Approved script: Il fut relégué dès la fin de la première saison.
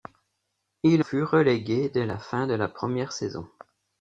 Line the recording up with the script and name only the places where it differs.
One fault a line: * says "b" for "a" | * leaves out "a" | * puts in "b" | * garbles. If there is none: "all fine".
all fine